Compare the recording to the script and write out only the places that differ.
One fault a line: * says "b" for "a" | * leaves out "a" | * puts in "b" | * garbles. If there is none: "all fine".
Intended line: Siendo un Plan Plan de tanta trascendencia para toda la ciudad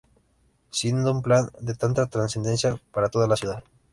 * leaves out "Plan"